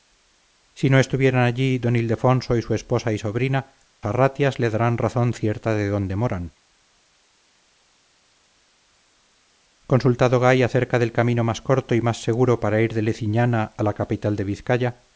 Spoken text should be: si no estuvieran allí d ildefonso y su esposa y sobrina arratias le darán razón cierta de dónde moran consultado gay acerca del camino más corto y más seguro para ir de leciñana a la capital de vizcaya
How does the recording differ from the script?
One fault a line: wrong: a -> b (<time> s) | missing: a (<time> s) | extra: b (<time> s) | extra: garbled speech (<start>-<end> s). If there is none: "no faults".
no faults